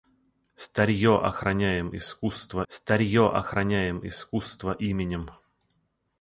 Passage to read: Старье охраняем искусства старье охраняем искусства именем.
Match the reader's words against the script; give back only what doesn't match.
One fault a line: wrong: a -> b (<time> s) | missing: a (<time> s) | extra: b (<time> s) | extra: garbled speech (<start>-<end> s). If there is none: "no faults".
no faults